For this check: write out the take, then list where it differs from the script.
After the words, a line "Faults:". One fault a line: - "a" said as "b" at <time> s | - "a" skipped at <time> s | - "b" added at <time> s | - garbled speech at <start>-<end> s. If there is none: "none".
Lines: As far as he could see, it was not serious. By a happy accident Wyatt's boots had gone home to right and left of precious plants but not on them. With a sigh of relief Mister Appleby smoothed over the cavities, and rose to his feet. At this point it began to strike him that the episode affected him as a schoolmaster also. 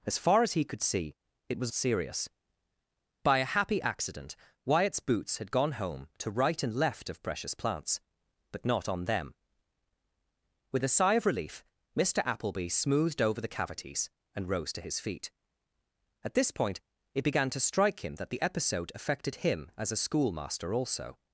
As far as he could see, it was serious. By a happy accident Wyatt's boots had gone home to right and left of precious plants but not on them. With a sigh of relief Mister Appleby smoothed over the cavities, and rose to his feet. At this point it began to strike him that the episode affected him as a schoolmaster also.
Faults:
- "not" skipped at 1.7 s